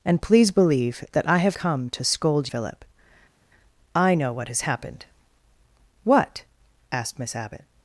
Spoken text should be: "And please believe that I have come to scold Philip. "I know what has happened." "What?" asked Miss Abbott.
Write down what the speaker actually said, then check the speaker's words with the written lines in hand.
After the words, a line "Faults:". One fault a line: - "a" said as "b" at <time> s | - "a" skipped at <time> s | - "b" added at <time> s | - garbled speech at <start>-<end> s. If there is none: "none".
"And please believe that I have come to scold Philip. "I know what has happened." "What?" asked Miss Abbott.
Faults:
none